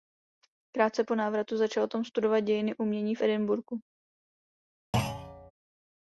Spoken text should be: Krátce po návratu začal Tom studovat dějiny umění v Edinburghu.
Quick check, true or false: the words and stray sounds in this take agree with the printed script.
false